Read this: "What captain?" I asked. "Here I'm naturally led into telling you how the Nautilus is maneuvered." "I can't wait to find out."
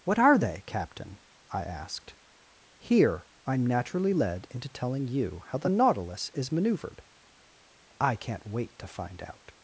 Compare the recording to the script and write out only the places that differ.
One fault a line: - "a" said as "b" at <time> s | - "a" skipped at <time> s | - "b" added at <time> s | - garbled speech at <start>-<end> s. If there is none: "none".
- "are they" added at 0.2 s